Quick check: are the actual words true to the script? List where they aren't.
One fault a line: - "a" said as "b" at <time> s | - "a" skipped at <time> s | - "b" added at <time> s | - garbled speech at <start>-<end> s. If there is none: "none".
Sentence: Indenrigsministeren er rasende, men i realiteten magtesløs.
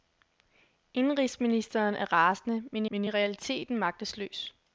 - "men" added at 2.9 s